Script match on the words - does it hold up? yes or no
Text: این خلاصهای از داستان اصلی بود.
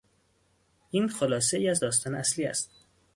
no